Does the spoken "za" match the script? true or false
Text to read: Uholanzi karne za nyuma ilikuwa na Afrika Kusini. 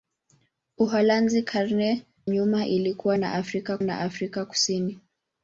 false